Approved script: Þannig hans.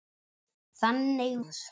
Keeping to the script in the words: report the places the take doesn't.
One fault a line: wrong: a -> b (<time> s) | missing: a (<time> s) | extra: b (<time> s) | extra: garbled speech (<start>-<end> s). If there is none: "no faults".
no faults